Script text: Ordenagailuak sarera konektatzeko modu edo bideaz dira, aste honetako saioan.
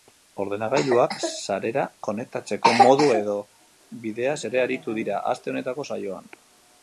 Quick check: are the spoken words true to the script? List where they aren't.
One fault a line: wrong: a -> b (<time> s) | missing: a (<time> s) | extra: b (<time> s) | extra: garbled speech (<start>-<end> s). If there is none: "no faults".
extra: ere aritu (4.5 s)